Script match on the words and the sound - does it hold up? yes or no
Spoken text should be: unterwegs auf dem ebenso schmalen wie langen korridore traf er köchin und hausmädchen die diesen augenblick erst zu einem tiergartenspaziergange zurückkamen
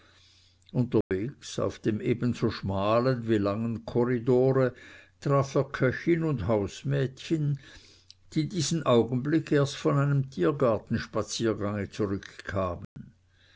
no